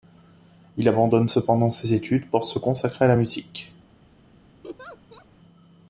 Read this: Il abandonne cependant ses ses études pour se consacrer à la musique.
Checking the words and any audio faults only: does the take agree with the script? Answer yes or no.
no